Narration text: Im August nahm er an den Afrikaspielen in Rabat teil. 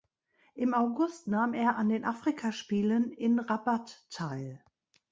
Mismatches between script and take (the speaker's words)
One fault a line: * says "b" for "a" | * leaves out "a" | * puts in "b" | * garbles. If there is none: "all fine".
all fine